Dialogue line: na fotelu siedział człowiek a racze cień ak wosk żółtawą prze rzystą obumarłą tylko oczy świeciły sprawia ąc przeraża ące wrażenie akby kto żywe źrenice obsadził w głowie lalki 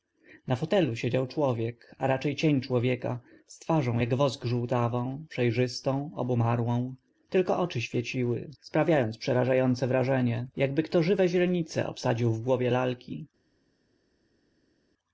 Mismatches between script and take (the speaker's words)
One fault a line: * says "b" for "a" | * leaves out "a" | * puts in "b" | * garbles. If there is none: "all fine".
* puts in "człowieka z twarzą"